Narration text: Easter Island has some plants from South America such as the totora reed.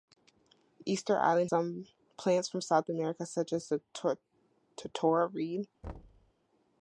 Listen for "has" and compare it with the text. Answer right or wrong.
wrong